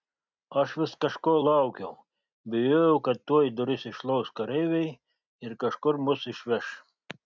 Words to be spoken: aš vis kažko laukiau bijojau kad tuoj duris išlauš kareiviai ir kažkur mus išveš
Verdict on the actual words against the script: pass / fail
pass